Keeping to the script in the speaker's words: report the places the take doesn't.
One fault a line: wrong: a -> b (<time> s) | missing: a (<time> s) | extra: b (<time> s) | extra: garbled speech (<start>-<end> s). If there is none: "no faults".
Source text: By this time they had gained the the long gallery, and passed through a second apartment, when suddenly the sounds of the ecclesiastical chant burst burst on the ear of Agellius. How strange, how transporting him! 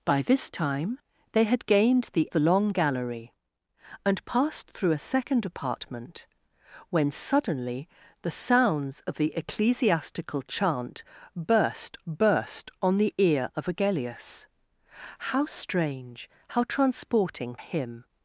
no faults